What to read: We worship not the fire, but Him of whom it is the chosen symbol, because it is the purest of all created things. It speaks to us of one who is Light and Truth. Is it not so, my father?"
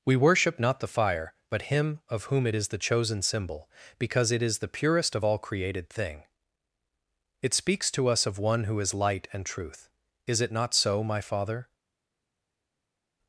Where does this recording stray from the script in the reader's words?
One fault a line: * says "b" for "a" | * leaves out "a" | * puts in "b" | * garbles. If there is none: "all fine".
* says "thing" for "things"